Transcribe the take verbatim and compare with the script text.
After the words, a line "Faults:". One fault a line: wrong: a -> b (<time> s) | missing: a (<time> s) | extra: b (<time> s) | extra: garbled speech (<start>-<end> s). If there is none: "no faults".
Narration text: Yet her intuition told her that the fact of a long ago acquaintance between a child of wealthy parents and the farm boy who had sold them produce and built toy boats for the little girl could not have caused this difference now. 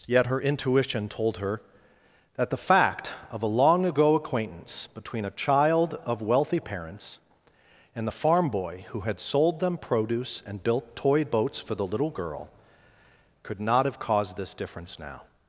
Yet her intuition told her that the fact of a long ago acquaintance between a child of wealthy parents and the farm boy who had sold them produce and built toy boats for the little girl could not have caused this difference now.
Faults:
no faults